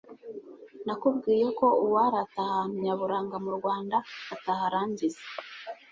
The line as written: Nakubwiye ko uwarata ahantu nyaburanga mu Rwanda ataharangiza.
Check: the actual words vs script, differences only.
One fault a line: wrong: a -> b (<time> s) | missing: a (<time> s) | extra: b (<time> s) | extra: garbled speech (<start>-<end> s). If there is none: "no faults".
no faults